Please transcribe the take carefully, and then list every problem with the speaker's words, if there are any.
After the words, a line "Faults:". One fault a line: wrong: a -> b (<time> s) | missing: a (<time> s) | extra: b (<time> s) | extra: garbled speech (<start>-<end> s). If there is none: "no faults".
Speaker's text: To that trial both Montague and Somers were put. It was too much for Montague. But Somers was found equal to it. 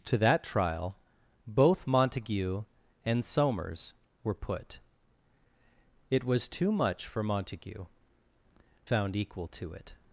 To that trial both Montague and Somers were put. It was too much for Montague. Found equal to it.
Faults:
missing: But Somers was (7.8 s)